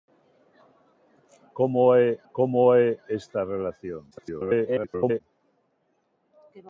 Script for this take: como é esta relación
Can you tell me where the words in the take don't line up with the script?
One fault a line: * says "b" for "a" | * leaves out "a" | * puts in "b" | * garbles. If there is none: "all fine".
* puts in "como é"
* garbles